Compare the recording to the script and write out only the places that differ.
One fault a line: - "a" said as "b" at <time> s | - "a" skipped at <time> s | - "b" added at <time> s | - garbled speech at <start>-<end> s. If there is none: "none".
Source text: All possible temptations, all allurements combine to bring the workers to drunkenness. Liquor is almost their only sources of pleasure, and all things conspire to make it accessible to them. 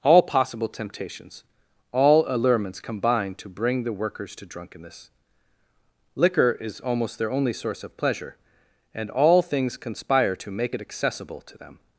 - "sources" said as "source" at 7.5 s